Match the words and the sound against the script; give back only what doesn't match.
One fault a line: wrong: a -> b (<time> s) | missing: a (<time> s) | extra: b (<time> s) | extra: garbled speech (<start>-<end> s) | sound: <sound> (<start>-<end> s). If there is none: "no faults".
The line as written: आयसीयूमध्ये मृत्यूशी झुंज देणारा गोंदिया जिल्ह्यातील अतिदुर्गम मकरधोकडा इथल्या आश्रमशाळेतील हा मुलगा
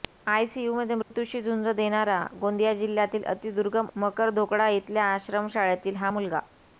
sound: dropout (1.0-1.1 s)